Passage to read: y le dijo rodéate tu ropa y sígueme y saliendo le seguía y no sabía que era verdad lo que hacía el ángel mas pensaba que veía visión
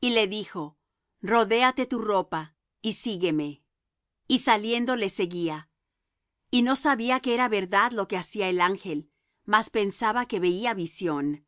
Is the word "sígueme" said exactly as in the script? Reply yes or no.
yes